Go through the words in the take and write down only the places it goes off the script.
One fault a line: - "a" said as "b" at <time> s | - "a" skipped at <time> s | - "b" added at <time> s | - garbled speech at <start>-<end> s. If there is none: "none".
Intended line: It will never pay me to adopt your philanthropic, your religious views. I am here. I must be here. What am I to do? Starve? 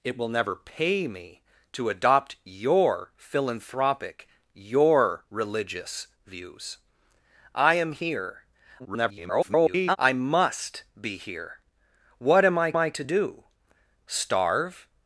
- garbled speech at 8.8-10.0 s
- "I" added at 12.8 s